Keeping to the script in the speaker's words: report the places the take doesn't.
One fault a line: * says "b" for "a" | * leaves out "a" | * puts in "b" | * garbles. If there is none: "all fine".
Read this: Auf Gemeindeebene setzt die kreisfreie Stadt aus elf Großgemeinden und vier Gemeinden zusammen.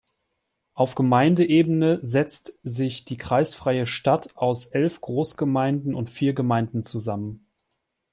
* puts in "sich"